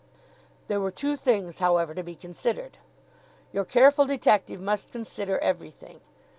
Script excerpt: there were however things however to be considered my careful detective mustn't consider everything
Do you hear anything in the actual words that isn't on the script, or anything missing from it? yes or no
yes